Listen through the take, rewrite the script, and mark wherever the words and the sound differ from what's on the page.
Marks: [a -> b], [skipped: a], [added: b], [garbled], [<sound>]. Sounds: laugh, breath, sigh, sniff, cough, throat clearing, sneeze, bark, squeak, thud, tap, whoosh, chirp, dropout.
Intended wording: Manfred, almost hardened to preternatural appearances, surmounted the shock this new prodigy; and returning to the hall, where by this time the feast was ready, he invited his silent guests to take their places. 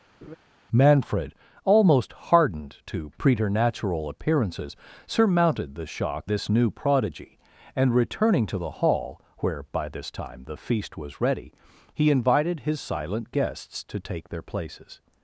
[laugh] Manfred, almost hardened to preternatural appearances, surmounted the shock this new prodigy; and returning to the hall, where by this time the feast was ready, he invited his silent guests to take their places.